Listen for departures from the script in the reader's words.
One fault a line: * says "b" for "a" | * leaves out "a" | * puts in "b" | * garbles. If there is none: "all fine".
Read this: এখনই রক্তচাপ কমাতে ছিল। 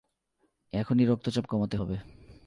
* says "হবে" for "ছিল"